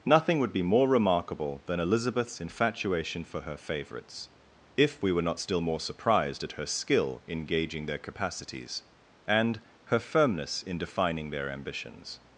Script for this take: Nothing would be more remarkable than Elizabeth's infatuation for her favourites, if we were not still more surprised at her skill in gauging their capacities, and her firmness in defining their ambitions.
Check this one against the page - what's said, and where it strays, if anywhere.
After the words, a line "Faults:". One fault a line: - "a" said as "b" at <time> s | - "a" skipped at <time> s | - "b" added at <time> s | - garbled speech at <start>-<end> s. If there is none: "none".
Nothing would be more remarkable than Elizabeth's infatuation for her favourites, if we were not still more surprised at her skill in gauging their capacities, and her firmness in defining their ambitions.
Faults:
none